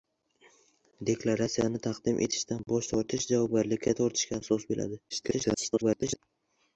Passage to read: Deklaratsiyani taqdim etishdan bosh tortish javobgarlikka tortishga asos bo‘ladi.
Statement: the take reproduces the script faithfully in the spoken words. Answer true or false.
false